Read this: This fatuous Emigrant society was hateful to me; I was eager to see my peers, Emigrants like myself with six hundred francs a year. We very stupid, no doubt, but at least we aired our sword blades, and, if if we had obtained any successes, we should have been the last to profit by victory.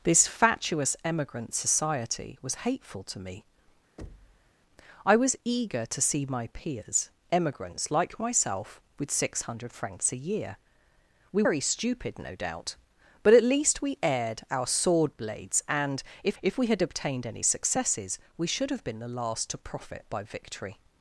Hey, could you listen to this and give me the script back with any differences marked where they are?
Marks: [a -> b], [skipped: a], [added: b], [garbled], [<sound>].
This fatuous Emigrant society was hateful to me; [thud] I was eager to see my peers, Emigrants like myself with six hundred francs a year. We very stupid, no doubt, but at least we aired our sword blades, and, if if we had obtained any successes, we should have been the last to profit by victory.